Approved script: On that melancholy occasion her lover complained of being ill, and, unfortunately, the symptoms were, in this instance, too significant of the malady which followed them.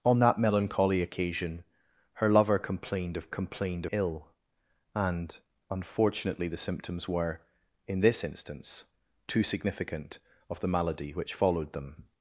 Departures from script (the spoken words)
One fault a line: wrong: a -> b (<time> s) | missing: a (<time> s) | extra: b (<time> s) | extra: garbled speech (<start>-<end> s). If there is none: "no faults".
wrong: being -> complained (3.3 s)